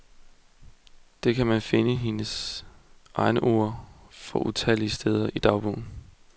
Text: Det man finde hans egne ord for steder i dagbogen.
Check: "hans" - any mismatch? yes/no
yes